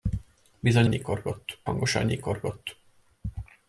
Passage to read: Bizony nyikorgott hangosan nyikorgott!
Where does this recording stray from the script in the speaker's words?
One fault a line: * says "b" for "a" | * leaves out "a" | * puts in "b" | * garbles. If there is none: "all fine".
all fine